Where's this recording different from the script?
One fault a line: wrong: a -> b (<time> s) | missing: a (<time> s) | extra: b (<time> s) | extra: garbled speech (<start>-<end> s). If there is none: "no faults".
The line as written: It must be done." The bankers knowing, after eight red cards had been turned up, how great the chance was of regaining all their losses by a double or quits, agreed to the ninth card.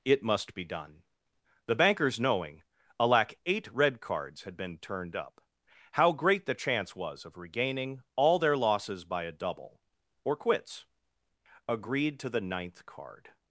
wrong: after -> alack (3.0 s)